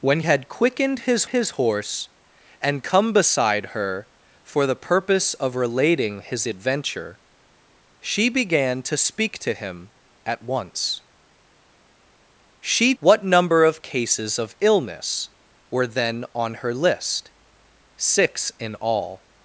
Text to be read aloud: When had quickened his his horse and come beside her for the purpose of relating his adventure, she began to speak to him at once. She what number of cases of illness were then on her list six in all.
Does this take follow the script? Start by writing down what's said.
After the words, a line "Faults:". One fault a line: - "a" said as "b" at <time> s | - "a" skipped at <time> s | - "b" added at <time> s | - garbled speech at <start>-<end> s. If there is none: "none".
When had quickened his his horse and come beside her for the purpose of relating his adventure, she began to speak to him at once. She what number of cases of illness were then on her list six in all.
Faults:
none